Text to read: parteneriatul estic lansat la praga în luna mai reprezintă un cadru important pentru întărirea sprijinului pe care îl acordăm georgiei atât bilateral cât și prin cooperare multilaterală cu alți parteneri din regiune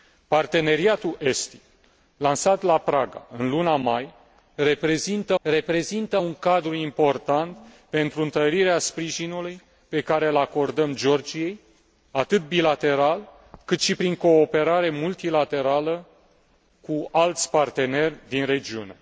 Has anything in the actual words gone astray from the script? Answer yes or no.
yes